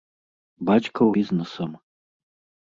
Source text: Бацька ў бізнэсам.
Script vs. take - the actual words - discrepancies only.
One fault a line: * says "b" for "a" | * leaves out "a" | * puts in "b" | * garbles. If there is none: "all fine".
all fine